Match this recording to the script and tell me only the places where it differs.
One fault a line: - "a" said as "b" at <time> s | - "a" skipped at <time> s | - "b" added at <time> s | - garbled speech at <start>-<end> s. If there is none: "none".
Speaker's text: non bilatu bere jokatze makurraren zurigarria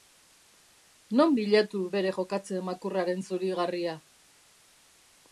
none